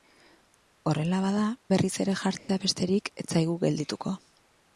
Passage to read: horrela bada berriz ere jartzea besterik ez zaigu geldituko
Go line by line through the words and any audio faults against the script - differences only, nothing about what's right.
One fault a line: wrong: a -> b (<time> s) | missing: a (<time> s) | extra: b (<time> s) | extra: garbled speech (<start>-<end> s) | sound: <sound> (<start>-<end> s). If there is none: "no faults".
sound: dropout (2.4-2.5 s)